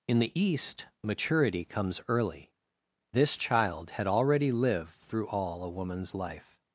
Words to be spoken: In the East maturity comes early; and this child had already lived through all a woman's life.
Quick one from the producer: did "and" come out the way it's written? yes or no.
no